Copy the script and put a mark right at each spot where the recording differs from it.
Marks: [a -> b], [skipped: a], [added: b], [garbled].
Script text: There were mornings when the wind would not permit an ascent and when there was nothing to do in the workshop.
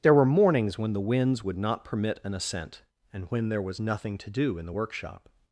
There were mornings when the [wind -> winds] would not permit an ascent and when there was nothing to do in the workshop.